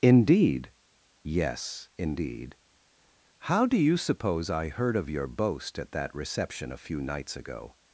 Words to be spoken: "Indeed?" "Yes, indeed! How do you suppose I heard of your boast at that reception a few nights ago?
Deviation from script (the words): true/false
false